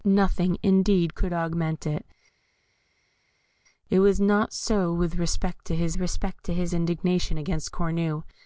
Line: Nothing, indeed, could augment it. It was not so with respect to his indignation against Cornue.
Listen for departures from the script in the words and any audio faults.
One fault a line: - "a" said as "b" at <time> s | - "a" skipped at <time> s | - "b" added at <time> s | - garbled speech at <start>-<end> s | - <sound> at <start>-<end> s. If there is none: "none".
- "respect to his" added at 6.0 s